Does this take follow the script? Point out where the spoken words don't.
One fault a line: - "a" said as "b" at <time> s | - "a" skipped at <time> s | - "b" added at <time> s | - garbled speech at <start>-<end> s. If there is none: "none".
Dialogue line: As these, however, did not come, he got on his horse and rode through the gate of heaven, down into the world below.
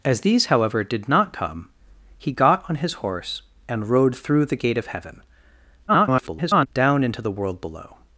- garbled speech at 5.9-6.7 s